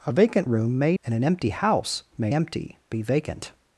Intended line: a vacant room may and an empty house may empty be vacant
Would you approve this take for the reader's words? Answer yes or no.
yes